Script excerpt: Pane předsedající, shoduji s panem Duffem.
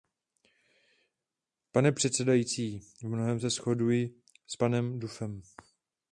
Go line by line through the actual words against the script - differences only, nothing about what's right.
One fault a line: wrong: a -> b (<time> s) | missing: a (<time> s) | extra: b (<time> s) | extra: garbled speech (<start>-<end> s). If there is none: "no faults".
extra: v mnohém se (2.8 s)